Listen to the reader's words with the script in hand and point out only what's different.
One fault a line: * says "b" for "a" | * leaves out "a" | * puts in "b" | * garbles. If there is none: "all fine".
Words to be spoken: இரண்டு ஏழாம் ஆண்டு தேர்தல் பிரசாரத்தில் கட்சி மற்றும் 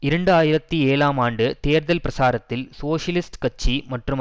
* puts in "ஆயிரத்தி"
* puts in "சோசியலிஸ்ட்"